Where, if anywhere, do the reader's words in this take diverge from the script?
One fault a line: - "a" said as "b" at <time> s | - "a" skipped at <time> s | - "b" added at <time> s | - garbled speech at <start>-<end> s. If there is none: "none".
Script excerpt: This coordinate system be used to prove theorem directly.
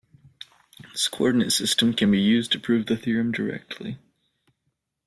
- "can" added at 1.9 s
- "the" added at 2.9 s